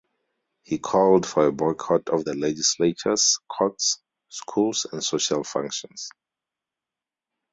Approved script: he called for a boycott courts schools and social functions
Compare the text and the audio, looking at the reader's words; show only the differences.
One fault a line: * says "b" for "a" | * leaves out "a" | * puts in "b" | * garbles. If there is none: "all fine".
* puts in "of the legislatures"